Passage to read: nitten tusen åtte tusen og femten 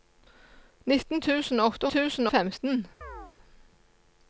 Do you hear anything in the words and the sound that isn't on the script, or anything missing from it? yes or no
yes